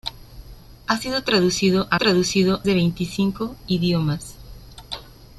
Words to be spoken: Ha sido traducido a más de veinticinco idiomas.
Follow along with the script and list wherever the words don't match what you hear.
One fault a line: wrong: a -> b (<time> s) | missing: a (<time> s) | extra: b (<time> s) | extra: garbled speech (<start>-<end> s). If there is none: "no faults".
wrong: más -> traducido (2.0 s)